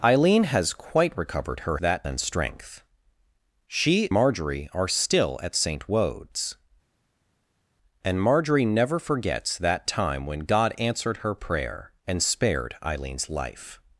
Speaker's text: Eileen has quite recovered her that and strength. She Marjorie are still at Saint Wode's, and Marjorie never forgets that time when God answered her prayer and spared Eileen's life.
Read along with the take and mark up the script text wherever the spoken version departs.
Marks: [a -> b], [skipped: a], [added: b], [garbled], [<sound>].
Eileen has quite recovered her that and strength. She Marjorie are still at Saint Wode's, and Marjorie never forgets that time when God answered her prayer and spared Eileen's life.